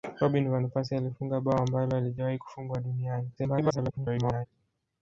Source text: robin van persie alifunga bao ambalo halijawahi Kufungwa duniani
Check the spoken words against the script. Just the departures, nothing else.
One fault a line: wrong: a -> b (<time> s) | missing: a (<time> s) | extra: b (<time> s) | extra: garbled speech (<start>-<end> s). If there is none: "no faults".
extra: garbled speech (3.4-4.5 s)